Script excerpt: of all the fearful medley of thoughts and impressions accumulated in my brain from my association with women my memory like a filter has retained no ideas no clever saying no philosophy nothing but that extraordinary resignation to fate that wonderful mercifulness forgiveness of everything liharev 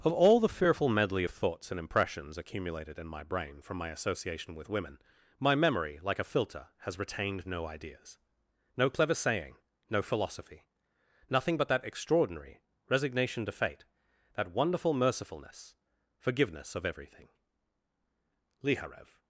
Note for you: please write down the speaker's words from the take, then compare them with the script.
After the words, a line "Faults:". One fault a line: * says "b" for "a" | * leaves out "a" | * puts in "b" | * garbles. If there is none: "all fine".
of all the fearful medley of thoughts and impressions accumulated in my brain from my association with women my memory like a filter has retained no ideas no clever saying no philosophy nothing but that extraordinary resignation to fate that wonderful mercifulness forgiveness of everything liharev
Faults:
all fine